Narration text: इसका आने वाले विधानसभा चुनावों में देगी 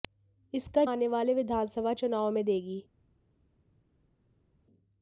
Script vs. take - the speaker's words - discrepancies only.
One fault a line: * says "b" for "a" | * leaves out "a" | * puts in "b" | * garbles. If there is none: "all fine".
all fine